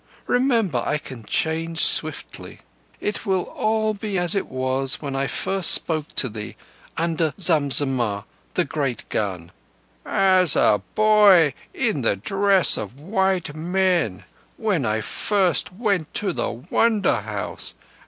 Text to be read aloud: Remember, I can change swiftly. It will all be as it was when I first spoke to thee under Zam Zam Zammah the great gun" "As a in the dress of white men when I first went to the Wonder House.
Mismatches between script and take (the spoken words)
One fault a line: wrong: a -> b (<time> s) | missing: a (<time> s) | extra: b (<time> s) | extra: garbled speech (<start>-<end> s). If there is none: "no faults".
missing: Zam (7.7 s)
extra: boy (10.9 s)